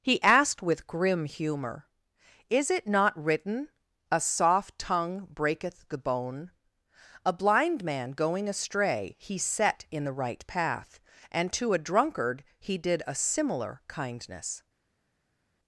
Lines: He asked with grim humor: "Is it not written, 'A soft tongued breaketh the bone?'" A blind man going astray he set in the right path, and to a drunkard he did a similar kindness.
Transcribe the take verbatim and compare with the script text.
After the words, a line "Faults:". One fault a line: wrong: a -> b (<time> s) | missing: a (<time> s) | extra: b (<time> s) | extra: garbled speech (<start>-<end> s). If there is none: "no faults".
He asked with grim humor: "Is it not written, 'A soft tongue breaketh the bone?'" A blind man going astray he set in the right path, and to a drunkard he did a similar kindness.
Faults:
wrong: tongued -> tongue (4.8 s)